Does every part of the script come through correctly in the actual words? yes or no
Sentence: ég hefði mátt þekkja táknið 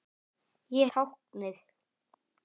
no